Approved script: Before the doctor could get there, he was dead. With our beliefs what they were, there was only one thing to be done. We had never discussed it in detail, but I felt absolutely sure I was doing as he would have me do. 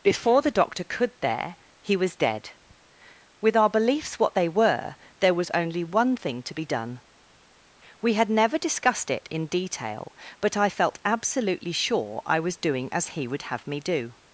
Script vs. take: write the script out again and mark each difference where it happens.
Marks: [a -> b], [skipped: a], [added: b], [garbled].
Before the doctor could [skipped: get] there, he was dead. With our beliefs what they were, there was only one thing to be done. We had never discussed it in detail, but I felt absolutely sure I was doing as he would have me do.